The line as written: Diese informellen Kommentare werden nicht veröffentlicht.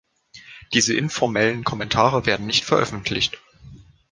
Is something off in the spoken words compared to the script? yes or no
no